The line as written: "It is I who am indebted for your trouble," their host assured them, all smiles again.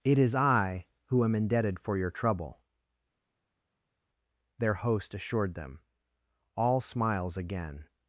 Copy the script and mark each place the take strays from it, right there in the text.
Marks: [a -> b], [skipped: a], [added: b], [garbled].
"It is I who am indebted for your trouble," their host assured them, all smiles again.